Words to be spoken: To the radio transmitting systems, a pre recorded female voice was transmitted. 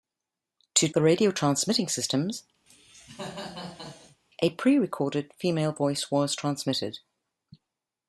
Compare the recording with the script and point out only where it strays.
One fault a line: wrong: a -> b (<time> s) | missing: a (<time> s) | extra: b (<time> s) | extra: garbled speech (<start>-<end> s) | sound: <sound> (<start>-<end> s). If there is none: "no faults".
sound: cough (2.7-4.2 s)